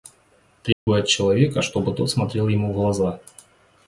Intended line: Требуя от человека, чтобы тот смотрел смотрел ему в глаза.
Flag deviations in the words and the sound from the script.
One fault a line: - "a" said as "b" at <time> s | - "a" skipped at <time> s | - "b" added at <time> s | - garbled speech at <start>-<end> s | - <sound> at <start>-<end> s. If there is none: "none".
- dropout at 0.7-0.9 s
- "смотрел" skipped at 2.5 s